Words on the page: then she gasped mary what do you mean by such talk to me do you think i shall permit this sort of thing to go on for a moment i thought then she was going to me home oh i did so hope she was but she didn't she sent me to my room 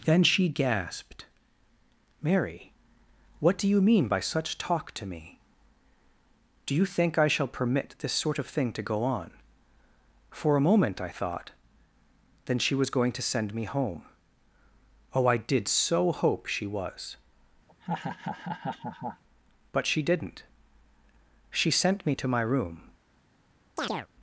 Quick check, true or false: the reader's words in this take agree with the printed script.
false